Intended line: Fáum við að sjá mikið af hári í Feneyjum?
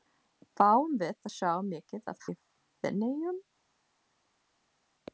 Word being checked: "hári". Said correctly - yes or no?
no